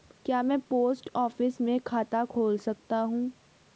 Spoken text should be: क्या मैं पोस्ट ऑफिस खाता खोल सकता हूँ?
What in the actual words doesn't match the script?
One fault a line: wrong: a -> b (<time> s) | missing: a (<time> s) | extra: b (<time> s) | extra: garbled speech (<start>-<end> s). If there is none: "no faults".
extra: में (1.6 s)